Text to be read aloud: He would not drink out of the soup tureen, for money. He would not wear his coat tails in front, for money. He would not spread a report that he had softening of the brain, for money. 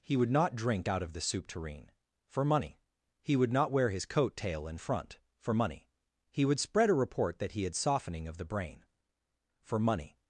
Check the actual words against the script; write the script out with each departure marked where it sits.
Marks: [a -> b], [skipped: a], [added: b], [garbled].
He would not drink out of the soup tureen, for money. He would not wear his coat [tails -> tail] in front, for money. He would [skipped: not] spread a report that he had softening of the brain, for money.